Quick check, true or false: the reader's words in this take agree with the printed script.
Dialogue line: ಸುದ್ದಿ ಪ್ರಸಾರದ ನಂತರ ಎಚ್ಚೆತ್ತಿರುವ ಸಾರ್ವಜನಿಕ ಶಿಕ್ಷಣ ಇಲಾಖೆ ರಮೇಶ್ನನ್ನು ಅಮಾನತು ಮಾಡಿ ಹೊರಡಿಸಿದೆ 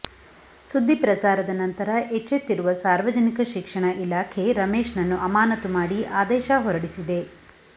false